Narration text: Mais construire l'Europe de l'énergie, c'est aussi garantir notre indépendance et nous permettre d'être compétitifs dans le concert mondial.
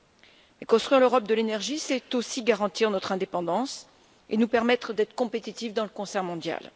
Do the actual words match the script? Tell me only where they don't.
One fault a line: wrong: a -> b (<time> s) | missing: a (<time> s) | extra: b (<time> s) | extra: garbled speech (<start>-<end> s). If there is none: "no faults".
no faults